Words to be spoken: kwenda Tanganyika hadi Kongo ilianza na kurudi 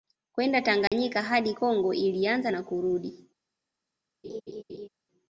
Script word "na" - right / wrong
right